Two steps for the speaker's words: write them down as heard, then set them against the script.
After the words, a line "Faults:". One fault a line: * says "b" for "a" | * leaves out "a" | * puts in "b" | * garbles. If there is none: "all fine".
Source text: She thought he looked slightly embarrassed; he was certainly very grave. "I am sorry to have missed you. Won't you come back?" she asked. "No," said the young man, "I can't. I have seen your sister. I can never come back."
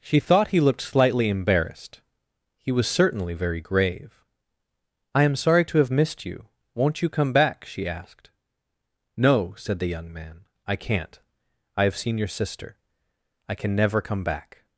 She thought he looked slightly embarrassed; he was certainly very grave. "I am sorry to have missed you. Won't you come back?" she asked. "No," said the young man, "I can't. I have seen your sister. I can never come back."
Faults:
all fine